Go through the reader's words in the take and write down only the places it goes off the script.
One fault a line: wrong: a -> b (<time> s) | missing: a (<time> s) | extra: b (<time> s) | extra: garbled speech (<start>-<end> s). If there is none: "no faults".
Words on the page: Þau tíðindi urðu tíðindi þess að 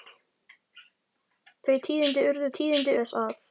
no faults